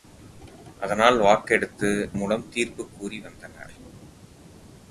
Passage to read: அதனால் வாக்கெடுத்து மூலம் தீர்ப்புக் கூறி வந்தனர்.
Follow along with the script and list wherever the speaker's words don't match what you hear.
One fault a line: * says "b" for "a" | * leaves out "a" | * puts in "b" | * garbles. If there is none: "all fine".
all fine